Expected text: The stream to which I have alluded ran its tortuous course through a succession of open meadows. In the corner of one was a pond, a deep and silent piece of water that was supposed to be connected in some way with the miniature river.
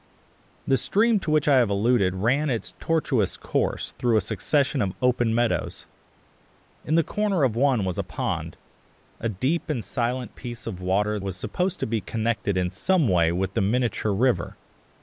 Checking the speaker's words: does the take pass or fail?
fail